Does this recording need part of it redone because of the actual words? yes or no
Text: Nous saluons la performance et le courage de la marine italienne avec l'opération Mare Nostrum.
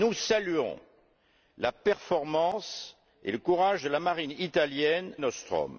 yes